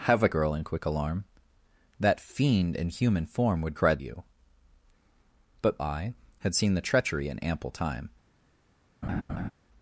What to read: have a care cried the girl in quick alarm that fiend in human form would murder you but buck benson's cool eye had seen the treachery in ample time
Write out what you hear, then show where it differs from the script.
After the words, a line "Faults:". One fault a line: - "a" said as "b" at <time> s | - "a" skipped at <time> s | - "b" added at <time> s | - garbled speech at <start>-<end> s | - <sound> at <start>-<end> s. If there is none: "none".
have a girl in quick alarm that fiend in human form would cried you but eye had seen the treachery in ample time
Faults:
- "care cried the" skipped at 0.3 s
- "murder" said as "cried" at 3.7 s
- "buck benson's cool" skipped at 5.8 s
- laugh at 9.0-9.5 s